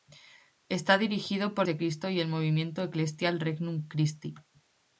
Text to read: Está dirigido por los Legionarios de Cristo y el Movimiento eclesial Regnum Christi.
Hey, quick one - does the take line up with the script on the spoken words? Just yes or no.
no